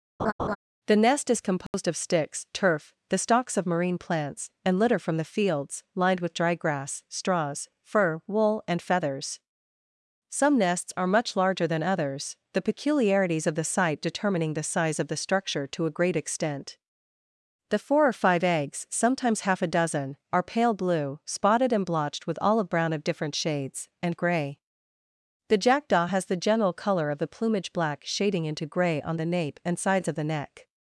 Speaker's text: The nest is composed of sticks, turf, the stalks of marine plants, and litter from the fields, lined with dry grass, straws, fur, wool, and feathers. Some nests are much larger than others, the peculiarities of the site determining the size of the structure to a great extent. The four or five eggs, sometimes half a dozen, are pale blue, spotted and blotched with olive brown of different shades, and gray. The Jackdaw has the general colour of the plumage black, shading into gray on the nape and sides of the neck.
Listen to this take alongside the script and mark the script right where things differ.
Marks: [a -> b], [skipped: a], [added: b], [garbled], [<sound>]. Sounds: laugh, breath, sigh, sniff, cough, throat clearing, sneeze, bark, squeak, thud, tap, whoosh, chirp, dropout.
[laugh] The nest is composed [dropout] of sticks, turf, the stalks of marine plants, and litter from the fields, lined with dry grass, straws, fur, wool, and feathers. Some nests are much larger than others, the peculiarities of the site determining the size of the structure to a great extent. The four or five eggs, sometimes half a dozen, are pale blue, spotted and blotched with olive brown of different shades, and gray. The Jackdaw has the general colour of the plumage black, shading into gray on the nape and sides of the neck.